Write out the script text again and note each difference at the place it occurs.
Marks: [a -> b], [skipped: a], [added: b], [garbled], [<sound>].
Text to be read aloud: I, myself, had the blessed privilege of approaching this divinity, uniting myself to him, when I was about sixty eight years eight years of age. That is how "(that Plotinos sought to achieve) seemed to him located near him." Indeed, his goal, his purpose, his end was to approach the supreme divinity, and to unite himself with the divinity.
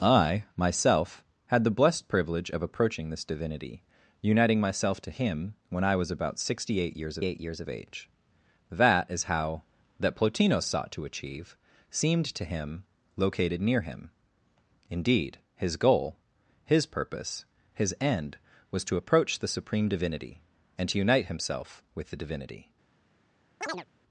I, myself, had the blessed privilege of approaching this divinity, uniting myself to him, when I was about sixty eight years eight years of age. That is how "(that Plotinos sought to achieve) seemed to him located near him." Indeed, his goal, his purpose, his end was to approach the supreme divinity, and to unite himself with the divinity. [chirp]